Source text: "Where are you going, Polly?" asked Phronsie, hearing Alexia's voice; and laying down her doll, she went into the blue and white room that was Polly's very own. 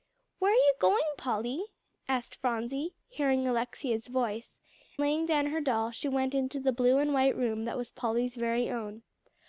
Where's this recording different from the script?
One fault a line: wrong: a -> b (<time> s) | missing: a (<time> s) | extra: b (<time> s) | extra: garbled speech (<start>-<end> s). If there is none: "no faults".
missing: and (4.6 s)